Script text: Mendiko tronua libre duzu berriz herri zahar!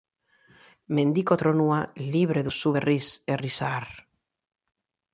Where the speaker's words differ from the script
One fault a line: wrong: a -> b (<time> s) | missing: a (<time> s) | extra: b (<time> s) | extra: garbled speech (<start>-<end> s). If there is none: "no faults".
no faults